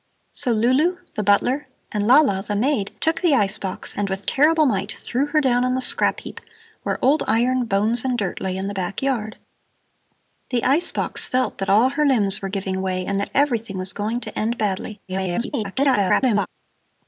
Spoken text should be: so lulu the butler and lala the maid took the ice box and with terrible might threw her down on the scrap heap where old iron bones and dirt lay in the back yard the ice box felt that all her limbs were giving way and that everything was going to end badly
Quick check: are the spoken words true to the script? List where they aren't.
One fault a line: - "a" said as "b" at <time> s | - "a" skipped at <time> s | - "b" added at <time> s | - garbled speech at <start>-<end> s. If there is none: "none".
- garbled speech at 15.1-16.5 s